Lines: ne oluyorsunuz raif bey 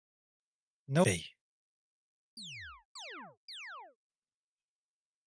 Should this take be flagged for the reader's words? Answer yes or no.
yes